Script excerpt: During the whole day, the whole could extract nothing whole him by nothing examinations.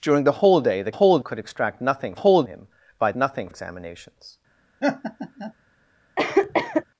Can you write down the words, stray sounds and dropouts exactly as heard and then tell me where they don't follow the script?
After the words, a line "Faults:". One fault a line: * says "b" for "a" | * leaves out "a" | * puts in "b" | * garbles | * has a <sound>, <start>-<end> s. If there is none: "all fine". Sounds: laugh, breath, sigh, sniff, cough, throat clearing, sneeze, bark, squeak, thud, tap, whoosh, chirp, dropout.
During the whole day, the whole could extract nothing whole him by nothing examinations.
Faults:
* has a laugh, 4.8-5.5 s
* has a cough, 6.2-6.8 s